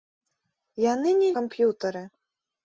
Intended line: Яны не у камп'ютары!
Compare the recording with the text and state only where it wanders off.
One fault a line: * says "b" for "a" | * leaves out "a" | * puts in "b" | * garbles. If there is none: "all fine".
all fine